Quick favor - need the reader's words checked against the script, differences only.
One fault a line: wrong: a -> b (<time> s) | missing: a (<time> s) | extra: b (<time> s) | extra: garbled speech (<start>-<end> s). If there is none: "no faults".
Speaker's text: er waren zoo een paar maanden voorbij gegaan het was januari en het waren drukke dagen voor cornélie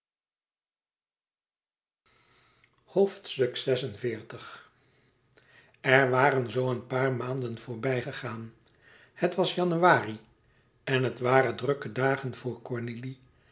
no faults